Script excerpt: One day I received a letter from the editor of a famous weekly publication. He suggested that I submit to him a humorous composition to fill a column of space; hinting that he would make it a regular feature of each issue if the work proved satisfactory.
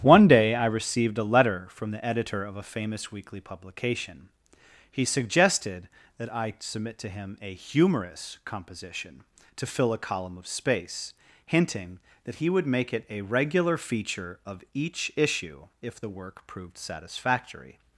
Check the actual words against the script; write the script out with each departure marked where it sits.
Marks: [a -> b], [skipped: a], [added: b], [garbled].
One day I received a letter from the editor of a famous weekly publication. He suggested that I submit to him a humorous composition to fill a column of space; hinting that he would make it a regular feature of each issue if the work proved satisfactory.